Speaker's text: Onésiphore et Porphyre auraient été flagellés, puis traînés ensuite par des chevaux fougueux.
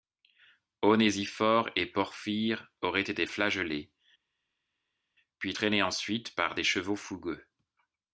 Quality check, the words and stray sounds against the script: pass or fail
pass